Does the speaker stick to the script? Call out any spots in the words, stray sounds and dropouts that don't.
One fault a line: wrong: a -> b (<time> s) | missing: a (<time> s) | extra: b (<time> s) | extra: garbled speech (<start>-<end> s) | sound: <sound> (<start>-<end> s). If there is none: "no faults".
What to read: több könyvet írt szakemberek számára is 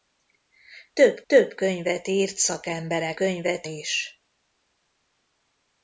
extra: több (1.3 s)
wrong: számára -> könyvet (3.1 s)